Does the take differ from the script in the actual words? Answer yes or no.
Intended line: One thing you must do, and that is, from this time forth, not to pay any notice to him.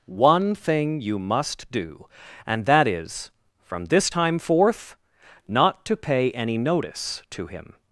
no